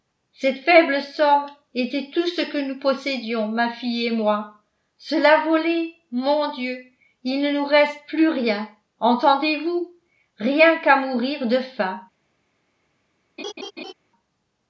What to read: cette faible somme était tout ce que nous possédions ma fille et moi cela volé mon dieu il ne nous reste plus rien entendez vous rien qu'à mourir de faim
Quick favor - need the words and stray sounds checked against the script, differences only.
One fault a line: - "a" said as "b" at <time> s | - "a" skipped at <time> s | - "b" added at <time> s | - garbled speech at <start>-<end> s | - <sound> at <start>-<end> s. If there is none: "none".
- laugh at 13.4-13.9 s